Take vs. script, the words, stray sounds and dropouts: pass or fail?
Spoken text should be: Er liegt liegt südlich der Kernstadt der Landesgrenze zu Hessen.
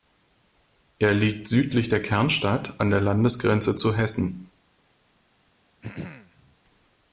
fail